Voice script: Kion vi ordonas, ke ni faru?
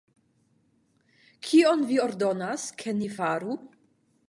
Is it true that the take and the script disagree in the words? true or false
false